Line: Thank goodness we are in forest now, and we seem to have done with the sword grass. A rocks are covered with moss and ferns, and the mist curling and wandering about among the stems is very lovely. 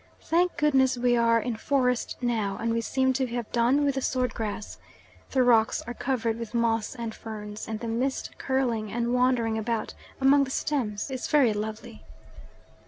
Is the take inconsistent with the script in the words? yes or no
yes